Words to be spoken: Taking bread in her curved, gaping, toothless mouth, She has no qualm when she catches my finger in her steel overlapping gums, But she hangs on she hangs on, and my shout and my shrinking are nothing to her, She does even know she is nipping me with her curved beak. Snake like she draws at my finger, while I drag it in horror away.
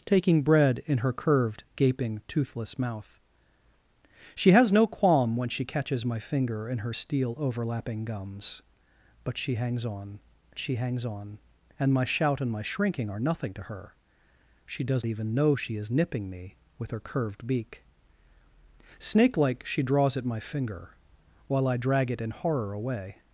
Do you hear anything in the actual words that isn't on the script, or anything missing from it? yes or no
no